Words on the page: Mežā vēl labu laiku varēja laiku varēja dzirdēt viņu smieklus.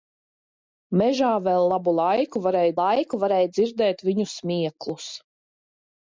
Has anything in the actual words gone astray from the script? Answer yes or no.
no